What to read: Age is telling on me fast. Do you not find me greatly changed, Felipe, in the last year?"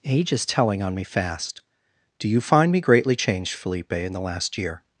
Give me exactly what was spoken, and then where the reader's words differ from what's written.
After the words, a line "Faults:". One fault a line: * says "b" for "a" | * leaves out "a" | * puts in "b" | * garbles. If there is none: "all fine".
Age is telling on me fast. Do you find me greatly changed, Felipe, in the last year?"
Faults:
* leaves out "not"